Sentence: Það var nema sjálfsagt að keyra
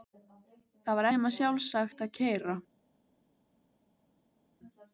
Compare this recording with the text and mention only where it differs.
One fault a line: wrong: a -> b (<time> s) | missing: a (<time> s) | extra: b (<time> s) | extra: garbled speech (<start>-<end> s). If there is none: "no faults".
no faults